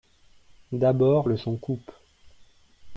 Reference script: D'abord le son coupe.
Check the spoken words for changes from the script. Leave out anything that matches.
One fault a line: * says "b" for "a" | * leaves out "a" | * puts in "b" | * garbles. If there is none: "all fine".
all fine